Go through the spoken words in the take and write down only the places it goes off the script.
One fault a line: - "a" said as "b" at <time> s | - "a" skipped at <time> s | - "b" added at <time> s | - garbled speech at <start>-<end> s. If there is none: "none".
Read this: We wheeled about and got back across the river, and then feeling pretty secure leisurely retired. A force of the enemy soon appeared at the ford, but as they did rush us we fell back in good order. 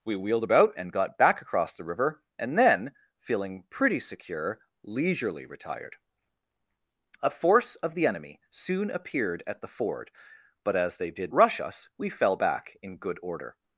none